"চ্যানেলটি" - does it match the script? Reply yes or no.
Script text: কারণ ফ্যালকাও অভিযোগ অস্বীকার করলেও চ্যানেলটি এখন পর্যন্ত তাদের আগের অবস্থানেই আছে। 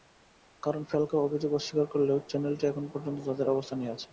yes